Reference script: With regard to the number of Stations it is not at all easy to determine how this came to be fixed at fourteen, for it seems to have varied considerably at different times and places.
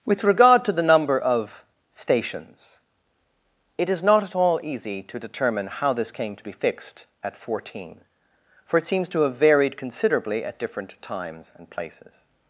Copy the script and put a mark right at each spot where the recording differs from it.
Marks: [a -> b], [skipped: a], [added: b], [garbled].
With regard to the number of Stations it is not at all easy to determine how this came to be fixed at fourteen, for it seems to have varied considerably at different times and places.